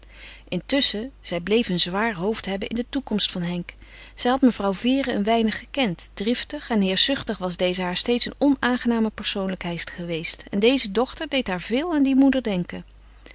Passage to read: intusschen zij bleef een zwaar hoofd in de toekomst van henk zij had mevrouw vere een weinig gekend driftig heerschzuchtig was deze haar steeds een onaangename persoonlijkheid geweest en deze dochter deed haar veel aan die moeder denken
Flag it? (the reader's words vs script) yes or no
yes